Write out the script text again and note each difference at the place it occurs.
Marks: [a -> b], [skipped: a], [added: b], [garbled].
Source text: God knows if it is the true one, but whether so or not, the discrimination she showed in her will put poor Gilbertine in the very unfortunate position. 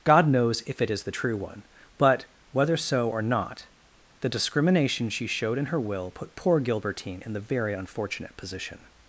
God knows if it is the true one, but whether so or not, the discrimination she showed in her will put poor Gilbertine in the very unfortunate position.